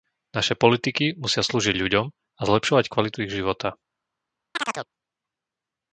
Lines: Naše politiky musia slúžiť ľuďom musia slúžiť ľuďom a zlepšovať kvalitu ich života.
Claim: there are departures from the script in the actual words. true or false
true